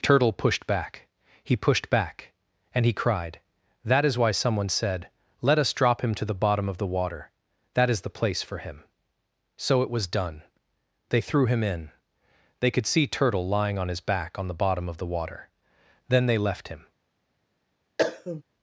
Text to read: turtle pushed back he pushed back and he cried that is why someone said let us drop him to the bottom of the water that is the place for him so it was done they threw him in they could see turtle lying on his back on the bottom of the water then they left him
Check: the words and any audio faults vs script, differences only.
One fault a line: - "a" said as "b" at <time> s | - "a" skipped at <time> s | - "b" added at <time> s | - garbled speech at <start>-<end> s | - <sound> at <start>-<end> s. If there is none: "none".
- cough at 18.0-18.4 s